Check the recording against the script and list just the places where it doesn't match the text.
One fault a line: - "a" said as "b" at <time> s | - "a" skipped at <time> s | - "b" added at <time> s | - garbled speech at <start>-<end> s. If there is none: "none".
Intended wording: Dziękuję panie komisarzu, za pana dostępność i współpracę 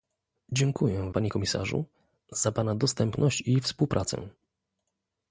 none